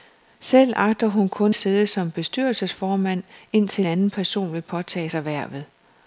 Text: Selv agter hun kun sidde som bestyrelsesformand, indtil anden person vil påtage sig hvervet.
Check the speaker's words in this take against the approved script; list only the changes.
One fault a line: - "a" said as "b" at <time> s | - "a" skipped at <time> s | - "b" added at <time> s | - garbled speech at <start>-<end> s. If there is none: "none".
none